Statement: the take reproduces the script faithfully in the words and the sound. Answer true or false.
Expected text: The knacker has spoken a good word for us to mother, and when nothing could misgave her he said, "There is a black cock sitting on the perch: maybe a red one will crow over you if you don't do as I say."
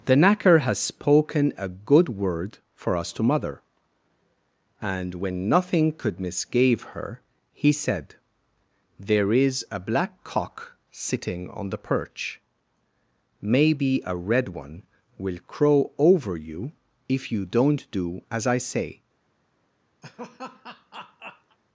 false